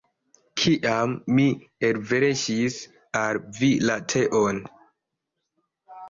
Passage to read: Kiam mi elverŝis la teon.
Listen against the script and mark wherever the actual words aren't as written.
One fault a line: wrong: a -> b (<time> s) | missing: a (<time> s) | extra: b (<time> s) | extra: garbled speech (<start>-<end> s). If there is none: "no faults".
extra: al vi (3.2 s)